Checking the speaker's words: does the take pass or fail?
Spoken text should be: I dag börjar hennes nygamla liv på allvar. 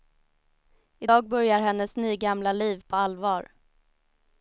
pass